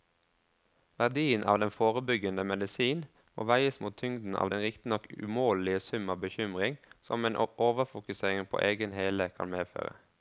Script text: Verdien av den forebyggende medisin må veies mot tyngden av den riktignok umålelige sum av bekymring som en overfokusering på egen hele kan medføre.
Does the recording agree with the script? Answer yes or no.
yes